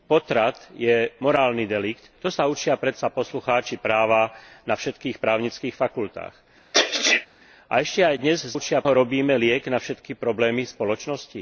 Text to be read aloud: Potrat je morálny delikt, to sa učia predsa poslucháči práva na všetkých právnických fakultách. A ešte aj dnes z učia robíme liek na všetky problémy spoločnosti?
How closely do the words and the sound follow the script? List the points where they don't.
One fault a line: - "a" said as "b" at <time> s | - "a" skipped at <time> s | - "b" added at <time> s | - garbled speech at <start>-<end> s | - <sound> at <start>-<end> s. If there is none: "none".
- sneeze at 6.7-7.3 s